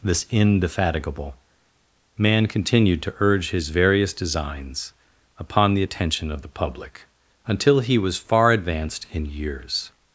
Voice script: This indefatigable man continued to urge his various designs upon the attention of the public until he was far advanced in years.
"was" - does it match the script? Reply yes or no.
yes